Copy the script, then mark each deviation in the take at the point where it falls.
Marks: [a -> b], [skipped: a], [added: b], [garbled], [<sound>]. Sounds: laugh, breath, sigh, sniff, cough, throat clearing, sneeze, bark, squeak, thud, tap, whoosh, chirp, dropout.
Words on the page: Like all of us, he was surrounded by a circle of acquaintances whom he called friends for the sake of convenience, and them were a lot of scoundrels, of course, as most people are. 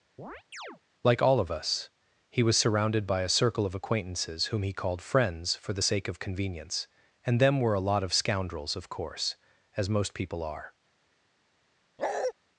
[chirp] Like all of us, he was surrounded by a circle of acquaintances whom he called friends for the sake of convenience, and them were a lot of scoundrels, of course, as most people are. [bark]